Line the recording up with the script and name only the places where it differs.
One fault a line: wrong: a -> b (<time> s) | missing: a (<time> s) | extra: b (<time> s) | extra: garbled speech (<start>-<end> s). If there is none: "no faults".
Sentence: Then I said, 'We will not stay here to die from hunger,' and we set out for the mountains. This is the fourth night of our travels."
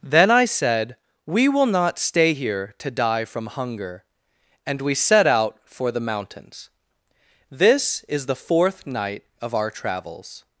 no faults